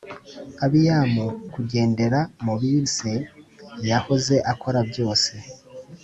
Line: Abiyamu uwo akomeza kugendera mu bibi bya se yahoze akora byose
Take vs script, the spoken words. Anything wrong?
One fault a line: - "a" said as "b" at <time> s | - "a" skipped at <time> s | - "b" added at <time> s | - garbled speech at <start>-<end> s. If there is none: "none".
- "uwo akomeza" skipped at 1.2 s
- "bya" skipped at 2.8 s